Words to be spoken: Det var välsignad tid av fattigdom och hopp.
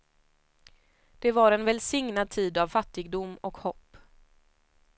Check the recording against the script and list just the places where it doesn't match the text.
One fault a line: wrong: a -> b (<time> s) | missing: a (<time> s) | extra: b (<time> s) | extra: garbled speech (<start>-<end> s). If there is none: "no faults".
extra: en (1.5 s)